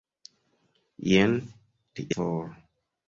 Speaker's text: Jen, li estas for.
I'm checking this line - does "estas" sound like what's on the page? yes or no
no